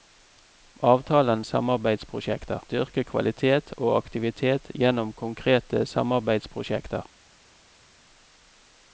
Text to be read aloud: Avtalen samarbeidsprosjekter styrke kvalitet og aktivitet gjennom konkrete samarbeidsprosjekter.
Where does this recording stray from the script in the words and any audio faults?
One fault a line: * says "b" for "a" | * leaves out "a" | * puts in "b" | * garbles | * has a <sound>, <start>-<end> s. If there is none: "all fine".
all fine